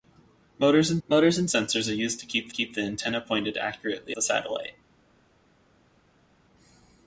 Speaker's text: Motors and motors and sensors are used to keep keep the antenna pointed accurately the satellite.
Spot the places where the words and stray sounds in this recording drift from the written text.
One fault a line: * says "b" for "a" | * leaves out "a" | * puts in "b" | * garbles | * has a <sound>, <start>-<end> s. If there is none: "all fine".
all fine